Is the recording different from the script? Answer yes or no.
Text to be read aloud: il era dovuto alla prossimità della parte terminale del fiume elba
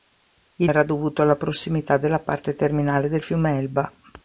no